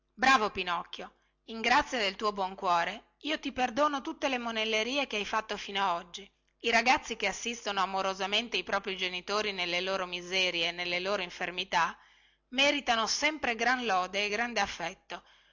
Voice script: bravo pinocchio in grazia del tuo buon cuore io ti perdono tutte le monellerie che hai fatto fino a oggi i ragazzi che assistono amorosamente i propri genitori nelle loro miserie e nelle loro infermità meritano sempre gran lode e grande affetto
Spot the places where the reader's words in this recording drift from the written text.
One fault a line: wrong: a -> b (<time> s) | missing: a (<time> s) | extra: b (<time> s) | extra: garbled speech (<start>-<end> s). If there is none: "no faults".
no faults